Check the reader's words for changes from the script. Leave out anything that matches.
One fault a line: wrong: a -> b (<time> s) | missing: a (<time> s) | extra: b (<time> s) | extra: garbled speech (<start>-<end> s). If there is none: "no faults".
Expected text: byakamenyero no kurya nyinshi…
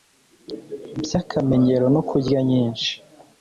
no faults